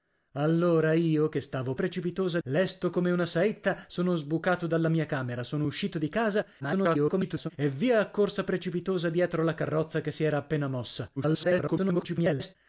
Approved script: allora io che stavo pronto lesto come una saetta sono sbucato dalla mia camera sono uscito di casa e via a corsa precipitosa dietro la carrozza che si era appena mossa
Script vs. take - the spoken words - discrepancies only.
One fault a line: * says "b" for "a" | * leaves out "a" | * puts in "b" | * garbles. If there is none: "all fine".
* says "precipitosa" for "pronto"
* garbles
* garbles